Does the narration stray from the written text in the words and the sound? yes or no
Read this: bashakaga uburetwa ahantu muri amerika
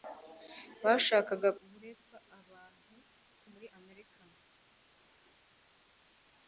no